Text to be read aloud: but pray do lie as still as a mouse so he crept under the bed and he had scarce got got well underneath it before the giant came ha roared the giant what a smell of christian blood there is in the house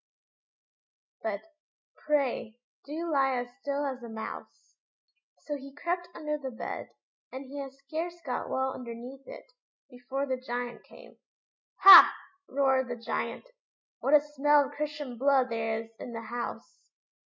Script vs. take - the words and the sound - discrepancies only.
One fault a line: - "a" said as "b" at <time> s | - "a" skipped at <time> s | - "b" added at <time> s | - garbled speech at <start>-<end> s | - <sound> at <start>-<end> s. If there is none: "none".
- "got" skipped at 8.5 s